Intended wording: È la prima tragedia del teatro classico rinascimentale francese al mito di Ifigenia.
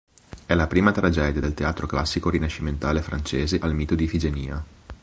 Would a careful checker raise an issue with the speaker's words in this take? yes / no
no